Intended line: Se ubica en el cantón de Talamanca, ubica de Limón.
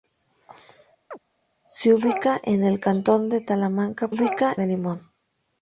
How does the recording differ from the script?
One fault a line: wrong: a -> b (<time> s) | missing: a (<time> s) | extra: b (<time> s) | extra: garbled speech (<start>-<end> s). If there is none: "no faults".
no faults